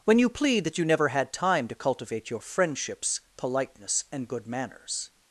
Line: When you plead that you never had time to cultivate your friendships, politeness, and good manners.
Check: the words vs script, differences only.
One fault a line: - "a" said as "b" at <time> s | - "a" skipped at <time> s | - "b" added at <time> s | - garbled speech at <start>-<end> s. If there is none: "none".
none